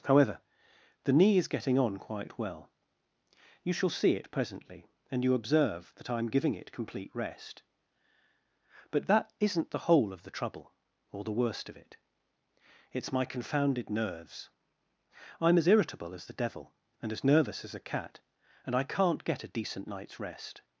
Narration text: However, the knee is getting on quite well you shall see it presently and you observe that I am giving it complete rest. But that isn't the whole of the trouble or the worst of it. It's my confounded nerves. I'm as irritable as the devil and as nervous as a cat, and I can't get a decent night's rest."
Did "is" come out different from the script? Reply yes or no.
no